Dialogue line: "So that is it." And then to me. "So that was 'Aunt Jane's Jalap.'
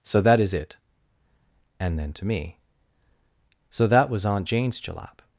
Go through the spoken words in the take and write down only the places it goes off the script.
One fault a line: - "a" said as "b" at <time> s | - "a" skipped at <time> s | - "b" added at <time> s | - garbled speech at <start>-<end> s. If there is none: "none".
none